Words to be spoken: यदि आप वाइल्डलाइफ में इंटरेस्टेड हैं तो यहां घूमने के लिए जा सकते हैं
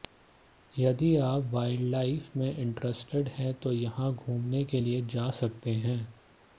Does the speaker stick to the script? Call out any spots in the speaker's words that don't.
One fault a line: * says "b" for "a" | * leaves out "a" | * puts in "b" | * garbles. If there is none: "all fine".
all fine